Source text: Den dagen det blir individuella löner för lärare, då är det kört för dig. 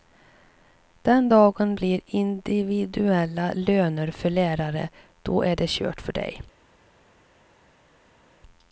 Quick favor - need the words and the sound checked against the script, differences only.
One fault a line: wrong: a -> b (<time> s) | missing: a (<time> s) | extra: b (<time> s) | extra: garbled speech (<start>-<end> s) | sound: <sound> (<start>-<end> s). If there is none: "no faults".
missing: det (1.8 s)